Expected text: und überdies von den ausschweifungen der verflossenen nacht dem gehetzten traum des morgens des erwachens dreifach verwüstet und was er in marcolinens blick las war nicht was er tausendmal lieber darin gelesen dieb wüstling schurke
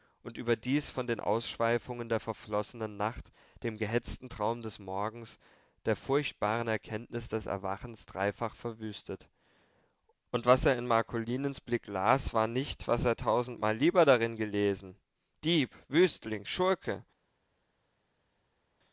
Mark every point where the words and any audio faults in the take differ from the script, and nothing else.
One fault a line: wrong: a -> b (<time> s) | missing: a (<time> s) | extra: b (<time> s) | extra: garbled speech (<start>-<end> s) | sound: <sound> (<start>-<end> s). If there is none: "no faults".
extra: der furchtbaren erkenntnis (5.8 s)